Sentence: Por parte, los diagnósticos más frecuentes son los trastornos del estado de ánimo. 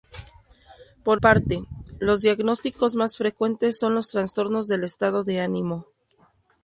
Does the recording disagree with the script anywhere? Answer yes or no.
no